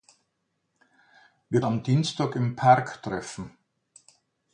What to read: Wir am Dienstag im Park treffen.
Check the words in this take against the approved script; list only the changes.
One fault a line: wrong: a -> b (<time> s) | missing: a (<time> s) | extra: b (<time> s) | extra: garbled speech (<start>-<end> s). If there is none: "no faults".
no faults